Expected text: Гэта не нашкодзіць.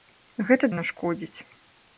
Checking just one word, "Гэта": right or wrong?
right